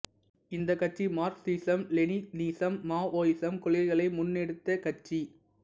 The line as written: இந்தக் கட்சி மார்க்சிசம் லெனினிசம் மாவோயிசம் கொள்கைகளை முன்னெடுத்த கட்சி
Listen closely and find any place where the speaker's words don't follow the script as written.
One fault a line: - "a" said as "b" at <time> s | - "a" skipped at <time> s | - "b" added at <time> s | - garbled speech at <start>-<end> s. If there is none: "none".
none